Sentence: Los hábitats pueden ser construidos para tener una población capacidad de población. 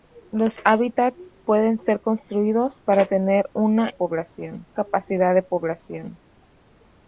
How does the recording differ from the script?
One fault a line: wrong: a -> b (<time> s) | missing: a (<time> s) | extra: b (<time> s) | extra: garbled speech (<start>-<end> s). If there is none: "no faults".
no faults